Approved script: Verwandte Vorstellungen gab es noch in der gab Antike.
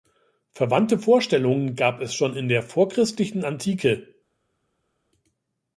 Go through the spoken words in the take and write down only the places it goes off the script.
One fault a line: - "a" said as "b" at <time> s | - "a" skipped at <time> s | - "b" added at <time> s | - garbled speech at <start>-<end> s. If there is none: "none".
- "noch" said as "schon" at 2.1 s
- "gab" said as "vorchristlichen" at 2.6 s